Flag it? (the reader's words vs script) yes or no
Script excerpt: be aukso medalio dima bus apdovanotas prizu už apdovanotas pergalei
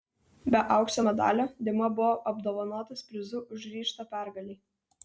yes